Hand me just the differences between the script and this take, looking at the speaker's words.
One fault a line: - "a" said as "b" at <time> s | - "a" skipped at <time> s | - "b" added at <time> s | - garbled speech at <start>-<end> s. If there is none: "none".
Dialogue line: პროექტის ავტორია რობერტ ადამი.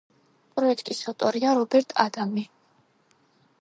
none